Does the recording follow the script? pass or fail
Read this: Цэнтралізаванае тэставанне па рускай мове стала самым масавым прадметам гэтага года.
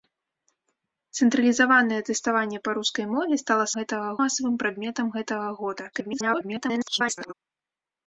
fail